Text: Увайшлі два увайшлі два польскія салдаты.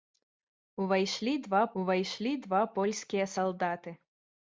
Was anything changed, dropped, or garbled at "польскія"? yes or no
no